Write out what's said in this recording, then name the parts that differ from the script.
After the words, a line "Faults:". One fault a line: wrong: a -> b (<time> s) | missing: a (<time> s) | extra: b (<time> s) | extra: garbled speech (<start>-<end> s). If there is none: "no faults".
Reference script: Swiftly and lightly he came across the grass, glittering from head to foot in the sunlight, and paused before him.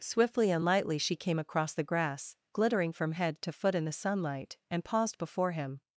Swiftly and lightly she came across the grass, glittering from head to foot in the sunlight, and paused before him.
Faults:
wrong: he -> she (1.0 s)